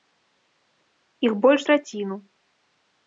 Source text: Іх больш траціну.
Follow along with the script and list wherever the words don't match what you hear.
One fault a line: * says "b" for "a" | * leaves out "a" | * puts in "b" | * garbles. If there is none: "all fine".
all fine